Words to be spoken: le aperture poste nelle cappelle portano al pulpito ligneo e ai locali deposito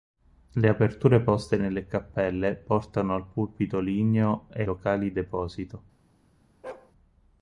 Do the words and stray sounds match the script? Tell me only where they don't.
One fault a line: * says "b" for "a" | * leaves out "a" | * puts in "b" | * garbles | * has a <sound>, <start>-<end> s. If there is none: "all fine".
* leaves out "ai"
* has a bark, 6.6-6.9 s